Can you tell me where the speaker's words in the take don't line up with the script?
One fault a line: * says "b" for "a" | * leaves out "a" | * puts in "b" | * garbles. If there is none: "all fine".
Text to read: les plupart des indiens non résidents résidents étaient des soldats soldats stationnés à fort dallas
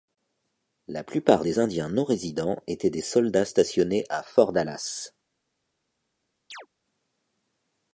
* says "la" for "les"
* leaves out "résidents"
* leaves out "soldats"